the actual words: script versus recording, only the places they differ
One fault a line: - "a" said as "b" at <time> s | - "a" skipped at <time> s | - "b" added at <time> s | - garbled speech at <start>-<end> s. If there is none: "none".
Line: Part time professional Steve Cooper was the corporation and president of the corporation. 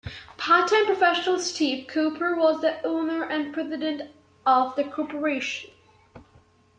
- "corporation" said as "owner" at 2.8 s